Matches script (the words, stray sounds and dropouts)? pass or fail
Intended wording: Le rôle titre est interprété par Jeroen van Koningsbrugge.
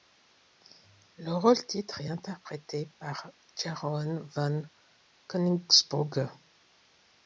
pass